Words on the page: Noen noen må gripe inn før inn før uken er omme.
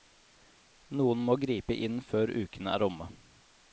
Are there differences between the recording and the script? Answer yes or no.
yes